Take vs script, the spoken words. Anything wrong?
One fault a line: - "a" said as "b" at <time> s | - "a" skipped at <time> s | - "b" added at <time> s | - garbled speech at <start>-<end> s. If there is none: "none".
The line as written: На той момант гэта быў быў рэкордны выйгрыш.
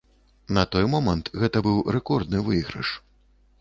- "быў" skipped at 1.8 s